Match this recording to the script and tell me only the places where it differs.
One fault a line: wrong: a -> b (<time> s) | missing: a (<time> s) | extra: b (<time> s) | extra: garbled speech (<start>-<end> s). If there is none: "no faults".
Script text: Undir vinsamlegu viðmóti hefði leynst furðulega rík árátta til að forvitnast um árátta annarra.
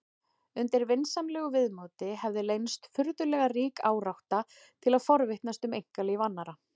wrong: árátta -> einkalíf (5.8 s)